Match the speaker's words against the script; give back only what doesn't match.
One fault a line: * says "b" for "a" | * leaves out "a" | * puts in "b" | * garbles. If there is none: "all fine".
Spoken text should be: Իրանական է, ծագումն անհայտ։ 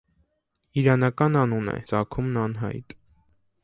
* puts in "անուն"